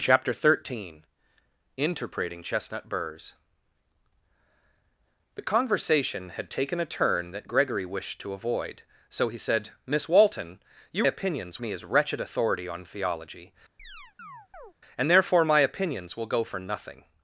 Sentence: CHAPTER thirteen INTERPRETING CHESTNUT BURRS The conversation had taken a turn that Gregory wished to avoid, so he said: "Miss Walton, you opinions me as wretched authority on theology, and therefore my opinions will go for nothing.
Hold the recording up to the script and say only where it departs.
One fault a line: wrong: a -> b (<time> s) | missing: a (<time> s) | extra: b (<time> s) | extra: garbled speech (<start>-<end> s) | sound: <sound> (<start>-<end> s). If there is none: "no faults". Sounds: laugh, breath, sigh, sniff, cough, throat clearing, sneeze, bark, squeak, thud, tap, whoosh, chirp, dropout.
sound: chirp (13.8-14.7 s)